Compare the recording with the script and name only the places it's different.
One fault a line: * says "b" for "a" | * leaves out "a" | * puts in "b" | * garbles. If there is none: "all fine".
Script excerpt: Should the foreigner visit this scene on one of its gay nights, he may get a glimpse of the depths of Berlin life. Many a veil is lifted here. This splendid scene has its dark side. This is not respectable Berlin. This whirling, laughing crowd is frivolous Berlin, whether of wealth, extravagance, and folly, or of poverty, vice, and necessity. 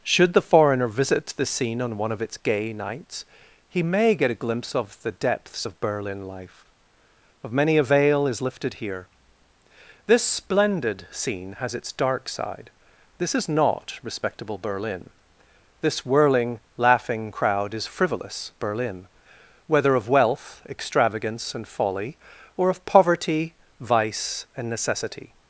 * says "the" for "this"
* puts in "of"